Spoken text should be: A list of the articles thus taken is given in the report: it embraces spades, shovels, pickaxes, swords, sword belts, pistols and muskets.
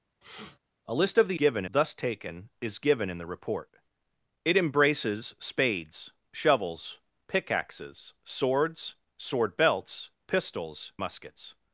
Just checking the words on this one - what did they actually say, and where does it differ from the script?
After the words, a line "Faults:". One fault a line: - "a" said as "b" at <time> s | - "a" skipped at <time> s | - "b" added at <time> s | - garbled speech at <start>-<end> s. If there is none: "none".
A list of the given thus taken is given in the report: it embraces spades, shovels, pickaxes, swords, sword belts, pistols muskets.
Faults:
- "articles" said as "given" at 1.3 s
- "and" skipped at 10.9 s